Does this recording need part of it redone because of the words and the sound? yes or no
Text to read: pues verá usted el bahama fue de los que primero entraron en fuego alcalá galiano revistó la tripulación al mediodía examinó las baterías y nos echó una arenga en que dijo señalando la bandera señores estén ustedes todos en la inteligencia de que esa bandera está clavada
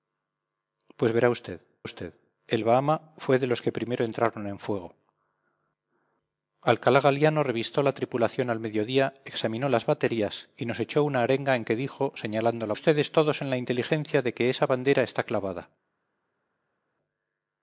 yes